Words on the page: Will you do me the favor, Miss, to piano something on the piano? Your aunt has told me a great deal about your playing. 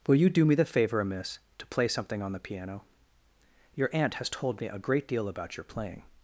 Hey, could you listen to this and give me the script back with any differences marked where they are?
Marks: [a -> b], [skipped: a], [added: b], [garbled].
Will you do me the favor, Miss, to [piano -> play] something on the piano? Your aunt has told me a great deal about your playing.